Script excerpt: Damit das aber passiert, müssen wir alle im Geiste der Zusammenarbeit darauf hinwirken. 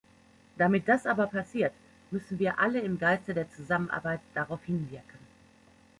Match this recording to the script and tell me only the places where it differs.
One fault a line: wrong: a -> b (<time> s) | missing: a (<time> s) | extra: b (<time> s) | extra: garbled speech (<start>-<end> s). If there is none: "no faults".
no faults